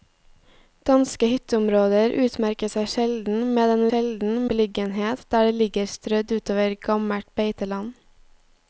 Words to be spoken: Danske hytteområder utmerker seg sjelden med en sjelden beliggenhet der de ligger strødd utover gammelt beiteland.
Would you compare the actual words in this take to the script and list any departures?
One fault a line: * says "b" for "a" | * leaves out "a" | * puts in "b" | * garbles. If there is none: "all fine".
all fine